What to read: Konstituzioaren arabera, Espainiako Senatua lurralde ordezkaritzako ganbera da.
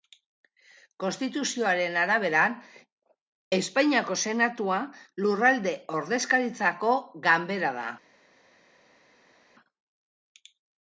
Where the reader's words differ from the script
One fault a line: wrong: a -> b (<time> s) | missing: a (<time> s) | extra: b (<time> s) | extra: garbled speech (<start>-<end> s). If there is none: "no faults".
no faults